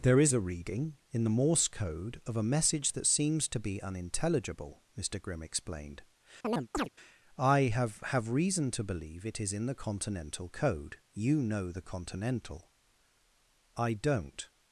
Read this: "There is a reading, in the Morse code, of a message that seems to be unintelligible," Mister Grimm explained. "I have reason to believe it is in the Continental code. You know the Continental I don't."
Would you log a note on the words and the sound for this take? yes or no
yes